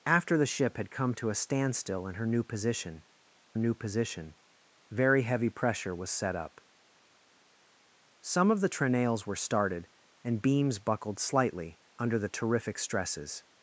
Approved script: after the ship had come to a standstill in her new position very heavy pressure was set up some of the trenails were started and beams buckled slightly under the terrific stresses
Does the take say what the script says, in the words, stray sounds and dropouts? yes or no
no